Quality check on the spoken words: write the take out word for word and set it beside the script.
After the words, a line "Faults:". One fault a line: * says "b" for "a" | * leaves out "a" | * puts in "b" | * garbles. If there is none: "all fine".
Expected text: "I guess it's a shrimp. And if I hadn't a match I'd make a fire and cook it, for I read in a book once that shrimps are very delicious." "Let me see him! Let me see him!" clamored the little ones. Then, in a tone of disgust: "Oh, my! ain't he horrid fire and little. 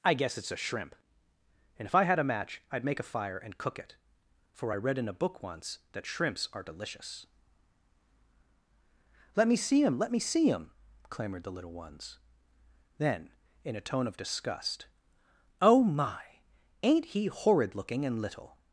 "I guess it's a shrimp. And if I had a match I'd make a fire and cook it, for I read in a book once that shrimps are delicious." "Let me see him! Let me see him!" clamored the little ones. Then, in a tone of disgust: "Oh, my! ain't he horrid looking and little.
Faults:
* says "had" for "hadn't"
* leaves out "very"
* says "looking" for "fire"